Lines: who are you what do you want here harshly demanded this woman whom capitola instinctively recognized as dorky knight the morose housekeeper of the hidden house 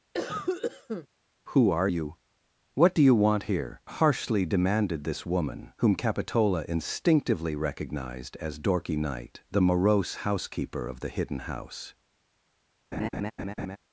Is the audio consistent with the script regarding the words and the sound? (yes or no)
no